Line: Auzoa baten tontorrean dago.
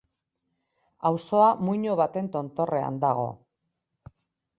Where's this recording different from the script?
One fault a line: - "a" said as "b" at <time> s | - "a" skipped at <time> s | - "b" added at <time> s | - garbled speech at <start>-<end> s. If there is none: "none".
- "muino" added at 1.7 s